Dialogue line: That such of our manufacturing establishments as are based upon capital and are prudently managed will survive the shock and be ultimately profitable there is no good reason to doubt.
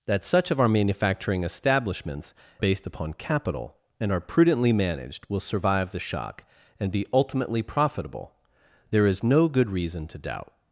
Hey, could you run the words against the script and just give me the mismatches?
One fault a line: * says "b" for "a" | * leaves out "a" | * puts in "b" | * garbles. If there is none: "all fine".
* leaves out "as are"